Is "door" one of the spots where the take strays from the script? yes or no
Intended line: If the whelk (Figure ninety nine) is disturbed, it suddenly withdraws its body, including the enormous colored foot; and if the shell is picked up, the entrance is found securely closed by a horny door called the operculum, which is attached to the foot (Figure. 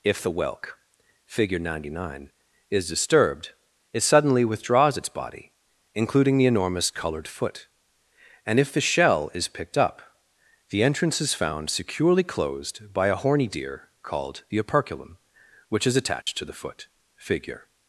yes